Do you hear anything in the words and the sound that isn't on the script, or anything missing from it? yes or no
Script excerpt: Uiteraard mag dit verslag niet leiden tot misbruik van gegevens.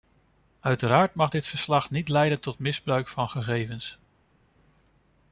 no